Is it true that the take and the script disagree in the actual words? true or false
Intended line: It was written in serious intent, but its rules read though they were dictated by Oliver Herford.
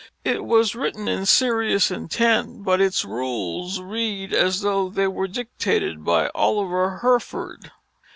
true